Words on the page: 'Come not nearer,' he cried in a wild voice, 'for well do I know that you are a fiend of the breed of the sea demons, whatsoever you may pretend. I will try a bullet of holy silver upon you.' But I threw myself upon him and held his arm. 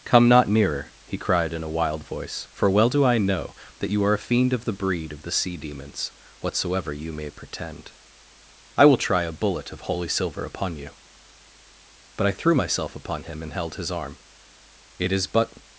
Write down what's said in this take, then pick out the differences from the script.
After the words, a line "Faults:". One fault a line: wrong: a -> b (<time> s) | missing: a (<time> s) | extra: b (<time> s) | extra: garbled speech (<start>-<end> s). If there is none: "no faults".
'Come not nearer,' he cried in a wild voice, 'for well do I know that you are a fiend of the breed of the sea demons, whatsoever you may pretend. I will try a bullet of holy silver upon you.' But I threw myself upon him and held his arm. 'It is but
Faults:
extra: It is but (15.0 s)